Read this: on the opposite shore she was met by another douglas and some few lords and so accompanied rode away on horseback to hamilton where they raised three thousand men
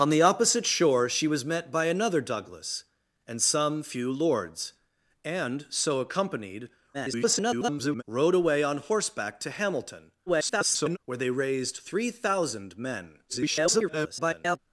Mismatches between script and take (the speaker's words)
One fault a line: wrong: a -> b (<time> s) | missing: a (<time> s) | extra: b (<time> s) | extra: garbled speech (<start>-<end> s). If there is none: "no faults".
extra: garbled speech (6.9-8.0 s)
extra: garbled speech (10.3-11.0 s)
extra: garbled speech (13.3-14.6 s)